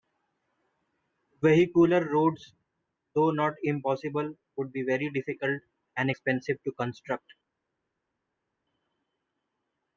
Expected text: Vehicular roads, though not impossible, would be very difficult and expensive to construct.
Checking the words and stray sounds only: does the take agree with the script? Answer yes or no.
yes